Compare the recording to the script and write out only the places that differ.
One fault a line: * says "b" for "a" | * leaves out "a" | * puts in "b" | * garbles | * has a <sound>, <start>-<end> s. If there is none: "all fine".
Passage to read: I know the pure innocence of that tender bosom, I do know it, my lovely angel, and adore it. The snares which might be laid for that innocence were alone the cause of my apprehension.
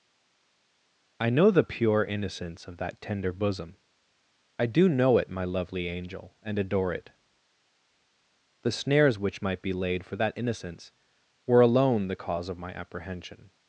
all fine